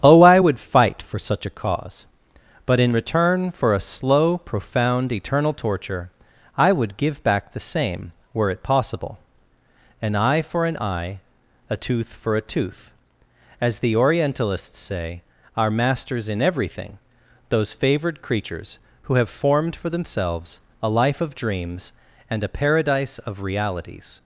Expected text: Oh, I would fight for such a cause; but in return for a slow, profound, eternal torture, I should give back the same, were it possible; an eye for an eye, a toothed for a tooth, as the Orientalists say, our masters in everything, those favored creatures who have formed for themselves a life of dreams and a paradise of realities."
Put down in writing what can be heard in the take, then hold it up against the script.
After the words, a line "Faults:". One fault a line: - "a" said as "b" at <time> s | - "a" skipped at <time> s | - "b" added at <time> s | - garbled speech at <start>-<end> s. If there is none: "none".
Oh, I would fight for such a cause; but in return for a slow, profound, eternal torture, I would give back the same, were it possible; an eye for an eye, a tooth for a tooth, as the Orientalists say, our masters in everything, those favored creatures who have formed for themselves a life of dreams and a paradise of realities."
Faults:
- "should" said as "would" at 6.7 s
- "toothed" said as "tooth" at 11.7 s